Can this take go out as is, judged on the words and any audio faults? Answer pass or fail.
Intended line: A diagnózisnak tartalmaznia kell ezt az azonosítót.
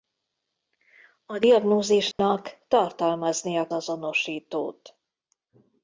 fail